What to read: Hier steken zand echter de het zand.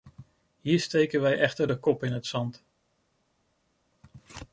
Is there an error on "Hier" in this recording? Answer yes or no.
no